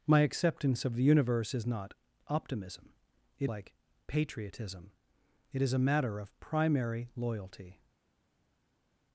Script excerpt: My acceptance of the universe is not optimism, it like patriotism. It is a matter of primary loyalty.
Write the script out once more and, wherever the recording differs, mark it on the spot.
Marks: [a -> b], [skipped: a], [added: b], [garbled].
My acceptance of the universe is not optimism, it like patriotism. It is a matter of primary loyalty.